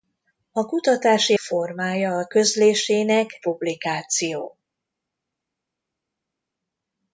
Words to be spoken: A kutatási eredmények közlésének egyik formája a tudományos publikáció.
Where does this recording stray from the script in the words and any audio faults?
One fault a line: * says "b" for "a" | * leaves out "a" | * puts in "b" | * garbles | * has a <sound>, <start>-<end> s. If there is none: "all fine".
* leaves out "eredmények közlésének egyik"
* says "közlésének" for "tudományos"